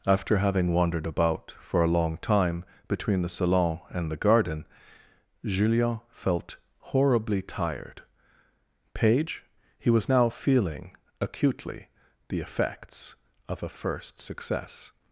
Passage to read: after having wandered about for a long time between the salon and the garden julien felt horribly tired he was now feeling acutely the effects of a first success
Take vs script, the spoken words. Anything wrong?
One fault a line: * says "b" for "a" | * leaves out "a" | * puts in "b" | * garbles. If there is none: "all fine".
* puts in "page"